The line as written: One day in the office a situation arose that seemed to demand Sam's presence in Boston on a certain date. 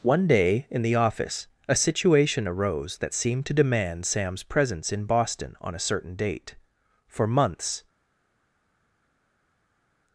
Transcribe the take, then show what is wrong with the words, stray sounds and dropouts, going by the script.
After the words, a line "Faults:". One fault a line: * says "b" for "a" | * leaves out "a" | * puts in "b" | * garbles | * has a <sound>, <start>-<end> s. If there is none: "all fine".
One day in the office a situation arose that seemed to demand Sam's presence in Boston on a certain date. For months
Faults:
* puts in "For months"